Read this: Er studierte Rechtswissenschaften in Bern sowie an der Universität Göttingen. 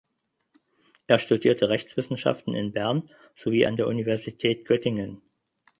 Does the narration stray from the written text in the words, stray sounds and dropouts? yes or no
no